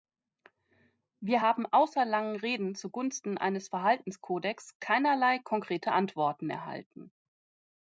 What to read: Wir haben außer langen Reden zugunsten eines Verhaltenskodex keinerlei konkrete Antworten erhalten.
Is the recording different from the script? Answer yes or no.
no